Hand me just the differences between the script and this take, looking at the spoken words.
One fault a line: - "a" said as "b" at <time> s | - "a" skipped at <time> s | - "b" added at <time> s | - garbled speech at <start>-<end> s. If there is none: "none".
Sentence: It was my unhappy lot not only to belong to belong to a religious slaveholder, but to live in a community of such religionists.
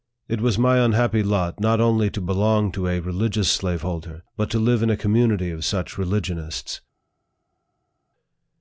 - "belong to" skipped at 2.9 s